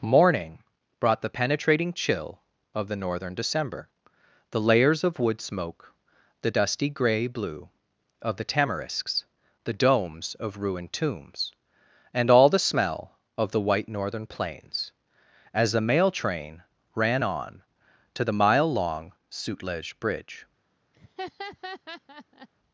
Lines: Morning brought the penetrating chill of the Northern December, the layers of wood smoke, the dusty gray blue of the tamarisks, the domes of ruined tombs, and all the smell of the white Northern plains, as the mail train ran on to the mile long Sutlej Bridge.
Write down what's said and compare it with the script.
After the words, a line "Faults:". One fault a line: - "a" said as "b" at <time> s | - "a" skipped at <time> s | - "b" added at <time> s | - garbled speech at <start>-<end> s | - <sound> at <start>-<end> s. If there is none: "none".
Morning brought the penetrating chill of the Northern December, the layers of wood smoke, the dusty gray blue of the tamarisks, the domes of ruined tombs, and all the smell of the white Northern plains, as the mail train ran on to the mile long Sutlej Bridge.
Faults:
- laugh at 20.9-22.5 s